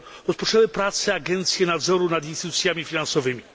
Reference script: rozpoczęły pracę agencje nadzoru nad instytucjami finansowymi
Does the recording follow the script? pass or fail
pass